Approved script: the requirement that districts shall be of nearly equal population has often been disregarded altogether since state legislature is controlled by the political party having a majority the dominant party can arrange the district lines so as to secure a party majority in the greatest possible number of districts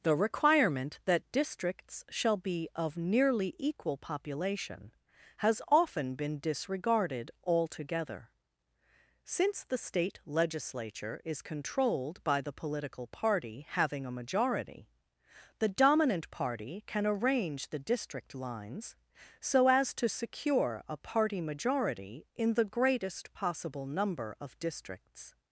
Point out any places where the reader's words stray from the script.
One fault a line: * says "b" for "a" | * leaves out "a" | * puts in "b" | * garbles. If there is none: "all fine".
* puts in "the"